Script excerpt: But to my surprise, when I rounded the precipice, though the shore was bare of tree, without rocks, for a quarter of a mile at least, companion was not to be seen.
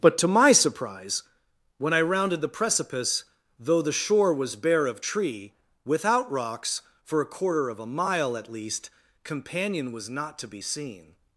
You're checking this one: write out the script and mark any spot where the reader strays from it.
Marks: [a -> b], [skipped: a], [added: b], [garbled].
But to my surprise, when I rounded the precipice, though the shore was bare of tree, without rocks, for a quarter of a mile at least, companion was not to be seen.